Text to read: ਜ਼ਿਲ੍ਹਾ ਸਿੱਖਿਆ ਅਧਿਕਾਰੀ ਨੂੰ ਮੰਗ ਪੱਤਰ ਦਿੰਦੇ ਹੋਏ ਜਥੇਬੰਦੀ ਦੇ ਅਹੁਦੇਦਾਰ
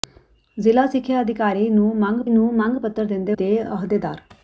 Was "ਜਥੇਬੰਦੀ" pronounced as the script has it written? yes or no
no